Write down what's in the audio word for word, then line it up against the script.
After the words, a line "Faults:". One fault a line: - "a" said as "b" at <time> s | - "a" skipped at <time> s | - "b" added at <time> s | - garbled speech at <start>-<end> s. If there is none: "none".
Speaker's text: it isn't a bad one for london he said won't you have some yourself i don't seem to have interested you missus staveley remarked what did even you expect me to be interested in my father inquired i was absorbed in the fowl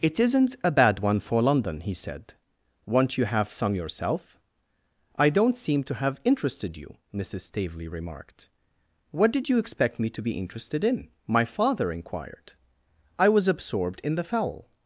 it isn't a bad one for london he said won't you have some yourself i don't seem to have interested you missus staveley remarked what did you expect me to be interested in my father inquired i was absorbed in the fowl
Faults:
- "even" skipped at 9.5 s